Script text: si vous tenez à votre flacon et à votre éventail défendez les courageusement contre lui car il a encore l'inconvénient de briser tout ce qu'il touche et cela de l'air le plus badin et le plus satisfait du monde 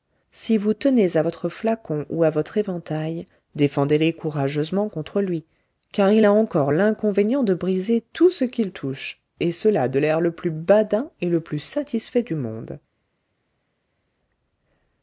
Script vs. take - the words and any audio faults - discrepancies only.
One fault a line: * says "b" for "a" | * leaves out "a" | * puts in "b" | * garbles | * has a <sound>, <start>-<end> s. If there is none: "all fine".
* says "ou" for "et"